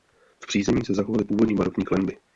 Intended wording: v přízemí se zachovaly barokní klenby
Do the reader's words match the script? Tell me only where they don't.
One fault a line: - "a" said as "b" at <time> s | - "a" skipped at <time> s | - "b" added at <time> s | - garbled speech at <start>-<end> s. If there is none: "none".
- "původní" added at 1.2 s